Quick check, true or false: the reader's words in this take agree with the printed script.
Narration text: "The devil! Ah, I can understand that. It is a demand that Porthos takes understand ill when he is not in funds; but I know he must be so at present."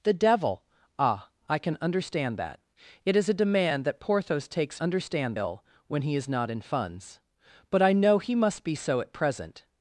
true